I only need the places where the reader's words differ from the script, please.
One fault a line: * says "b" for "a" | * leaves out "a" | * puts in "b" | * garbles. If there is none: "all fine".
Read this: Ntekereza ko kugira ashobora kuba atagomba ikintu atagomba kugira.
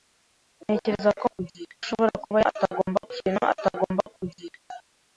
all fine